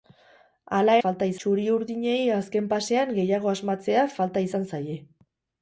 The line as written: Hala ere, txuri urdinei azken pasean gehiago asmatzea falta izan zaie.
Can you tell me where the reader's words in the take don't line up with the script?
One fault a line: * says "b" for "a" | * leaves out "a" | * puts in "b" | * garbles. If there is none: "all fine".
* says "falta" for "ere"